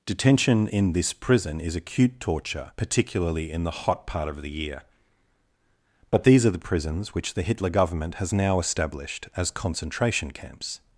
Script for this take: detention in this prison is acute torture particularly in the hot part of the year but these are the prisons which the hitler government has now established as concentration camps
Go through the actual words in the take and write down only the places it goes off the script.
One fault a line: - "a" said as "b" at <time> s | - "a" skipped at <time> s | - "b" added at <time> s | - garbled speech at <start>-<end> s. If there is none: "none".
none